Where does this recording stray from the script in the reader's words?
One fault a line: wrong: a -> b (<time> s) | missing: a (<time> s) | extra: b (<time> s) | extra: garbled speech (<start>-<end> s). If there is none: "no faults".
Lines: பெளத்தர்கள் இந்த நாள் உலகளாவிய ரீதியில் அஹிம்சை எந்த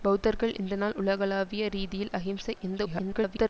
extra: garbled speech (2.8-3.5 s)